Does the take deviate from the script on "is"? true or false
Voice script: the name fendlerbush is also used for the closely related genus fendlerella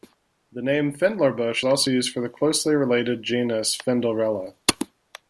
true